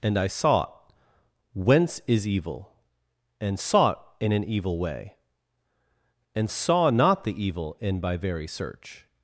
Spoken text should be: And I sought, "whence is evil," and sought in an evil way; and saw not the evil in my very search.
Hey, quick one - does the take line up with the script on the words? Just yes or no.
no